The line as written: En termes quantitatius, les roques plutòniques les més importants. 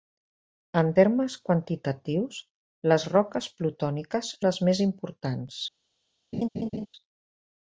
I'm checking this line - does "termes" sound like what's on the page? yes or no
yes